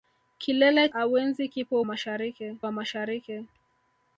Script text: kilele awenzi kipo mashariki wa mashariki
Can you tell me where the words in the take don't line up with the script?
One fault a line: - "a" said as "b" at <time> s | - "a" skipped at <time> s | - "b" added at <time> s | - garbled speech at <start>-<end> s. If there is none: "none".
none